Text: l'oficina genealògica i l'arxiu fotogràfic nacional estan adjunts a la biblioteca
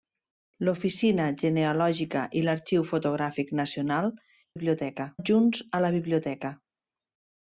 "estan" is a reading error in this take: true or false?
true